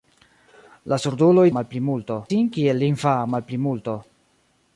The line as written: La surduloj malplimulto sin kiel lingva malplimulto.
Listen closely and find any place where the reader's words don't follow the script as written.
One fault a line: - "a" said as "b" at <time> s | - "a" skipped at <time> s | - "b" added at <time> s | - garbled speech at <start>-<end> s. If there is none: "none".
none